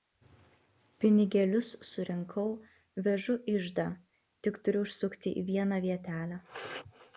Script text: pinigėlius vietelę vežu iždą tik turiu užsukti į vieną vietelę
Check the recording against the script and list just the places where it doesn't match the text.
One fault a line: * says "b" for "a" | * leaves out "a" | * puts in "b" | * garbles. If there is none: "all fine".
* says "surinkau" for "vietelę"